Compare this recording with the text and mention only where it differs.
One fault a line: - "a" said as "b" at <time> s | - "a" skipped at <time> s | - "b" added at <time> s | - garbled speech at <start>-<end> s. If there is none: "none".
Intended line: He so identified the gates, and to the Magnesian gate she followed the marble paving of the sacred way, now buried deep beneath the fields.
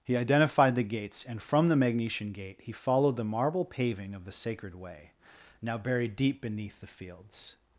- "so" skipped at 0.2 s
- "to" said as "from" at 1.4 s
- "she" said as "he" at 2.6 s